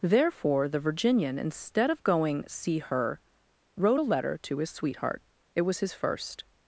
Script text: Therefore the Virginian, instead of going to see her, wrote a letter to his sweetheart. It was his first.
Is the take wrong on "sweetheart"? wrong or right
right